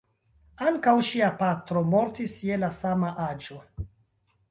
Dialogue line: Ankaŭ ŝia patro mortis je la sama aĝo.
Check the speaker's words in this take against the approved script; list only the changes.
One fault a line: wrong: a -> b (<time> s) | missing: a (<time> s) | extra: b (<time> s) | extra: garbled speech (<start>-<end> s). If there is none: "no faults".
no faults